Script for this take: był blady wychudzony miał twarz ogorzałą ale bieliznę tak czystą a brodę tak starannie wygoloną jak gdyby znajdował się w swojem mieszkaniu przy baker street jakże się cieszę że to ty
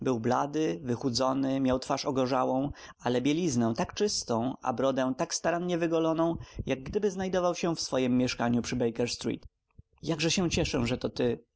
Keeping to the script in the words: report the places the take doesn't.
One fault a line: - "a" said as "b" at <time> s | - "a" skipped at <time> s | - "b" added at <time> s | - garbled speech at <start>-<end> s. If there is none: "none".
none